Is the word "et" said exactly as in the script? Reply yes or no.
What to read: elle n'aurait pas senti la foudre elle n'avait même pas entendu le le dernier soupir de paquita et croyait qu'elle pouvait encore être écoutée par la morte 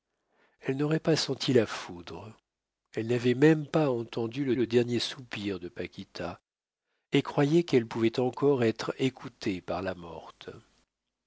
yes